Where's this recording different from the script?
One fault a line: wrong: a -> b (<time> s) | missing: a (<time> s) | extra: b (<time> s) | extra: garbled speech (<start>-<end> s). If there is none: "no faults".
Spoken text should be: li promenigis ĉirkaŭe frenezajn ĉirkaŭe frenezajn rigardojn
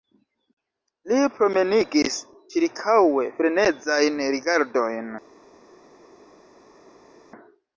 missing: ĉirkaŭe frenezajn (4.2 s)